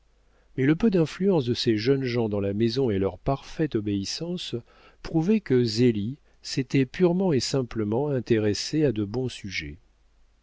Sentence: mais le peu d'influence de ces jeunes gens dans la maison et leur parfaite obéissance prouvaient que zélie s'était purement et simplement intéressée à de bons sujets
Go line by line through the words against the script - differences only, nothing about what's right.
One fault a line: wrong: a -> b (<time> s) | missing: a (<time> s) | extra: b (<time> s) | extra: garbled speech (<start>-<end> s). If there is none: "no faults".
no faults